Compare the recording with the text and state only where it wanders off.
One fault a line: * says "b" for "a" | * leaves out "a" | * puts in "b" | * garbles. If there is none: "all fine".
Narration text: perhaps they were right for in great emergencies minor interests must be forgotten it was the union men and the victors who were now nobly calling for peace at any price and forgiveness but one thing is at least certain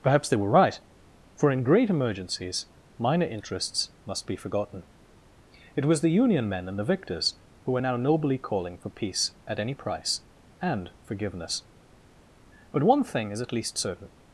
all fine